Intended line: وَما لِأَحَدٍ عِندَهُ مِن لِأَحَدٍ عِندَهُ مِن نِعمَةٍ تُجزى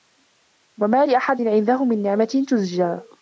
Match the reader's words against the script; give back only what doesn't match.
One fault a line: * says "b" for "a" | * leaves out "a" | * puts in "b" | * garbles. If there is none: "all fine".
* leaves out "لِأَحَدٍ عِندَهُ مِن"